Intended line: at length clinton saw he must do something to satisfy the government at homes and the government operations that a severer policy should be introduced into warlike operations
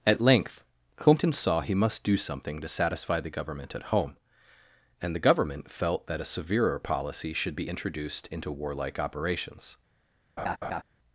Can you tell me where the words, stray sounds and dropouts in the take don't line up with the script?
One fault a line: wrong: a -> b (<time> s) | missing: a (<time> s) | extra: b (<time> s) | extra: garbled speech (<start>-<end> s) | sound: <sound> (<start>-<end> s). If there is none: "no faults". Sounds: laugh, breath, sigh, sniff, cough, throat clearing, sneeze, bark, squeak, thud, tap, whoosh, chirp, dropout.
wrong: homes -> home (3.9 s)
wrong: operations -> felt (5.7 s)
sound: laugh (10.4-10.8 s)